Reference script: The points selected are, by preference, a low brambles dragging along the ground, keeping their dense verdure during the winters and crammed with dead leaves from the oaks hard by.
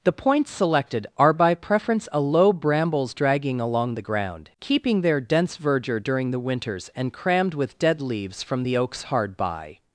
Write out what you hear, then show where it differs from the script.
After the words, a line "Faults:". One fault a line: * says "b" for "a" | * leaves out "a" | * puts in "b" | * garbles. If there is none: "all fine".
The points selected are, by preference, a low brambles dragging along the ground, keeping their dense verdure during the winters and crammed with dead leaves from the oaks hard by.
Faults:
all fine